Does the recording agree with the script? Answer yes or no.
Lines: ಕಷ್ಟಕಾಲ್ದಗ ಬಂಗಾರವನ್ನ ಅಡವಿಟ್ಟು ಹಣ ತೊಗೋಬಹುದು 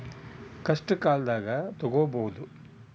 no